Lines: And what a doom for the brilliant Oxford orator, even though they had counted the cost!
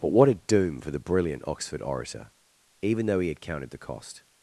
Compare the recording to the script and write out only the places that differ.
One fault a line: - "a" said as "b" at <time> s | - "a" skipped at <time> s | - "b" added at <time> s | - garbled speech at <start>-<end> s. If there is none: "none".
- "And" said as "But" at 0.0 s
- "they" said as "he" at 3.2 s